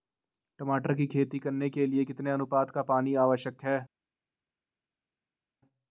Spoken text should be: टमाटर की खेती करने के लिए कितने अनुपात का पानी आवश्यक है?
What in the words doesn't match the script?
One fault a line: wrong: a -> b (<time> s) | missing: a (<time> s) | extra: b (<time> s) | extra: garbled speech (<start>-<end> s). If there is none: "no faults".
no faults